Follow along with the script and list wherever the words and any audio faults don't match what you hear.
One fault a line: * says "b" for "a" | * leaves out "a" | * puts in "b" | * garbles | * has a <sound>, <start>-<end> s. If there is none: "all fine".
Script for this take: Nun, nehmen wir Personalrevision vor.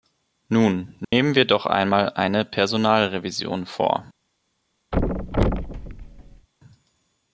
* has a dropout, 1.0-1.1 s
* puts in "doch einmal eine"
* has a thud, 4.9-6.5 s